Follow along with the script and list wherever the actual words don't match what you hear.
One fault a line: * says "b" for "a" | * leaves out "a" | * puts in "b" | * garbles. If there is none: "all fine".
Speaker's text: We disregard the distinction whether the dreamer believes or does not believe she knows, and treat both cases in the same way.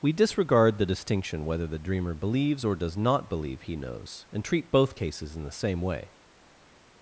* says "he" for "she"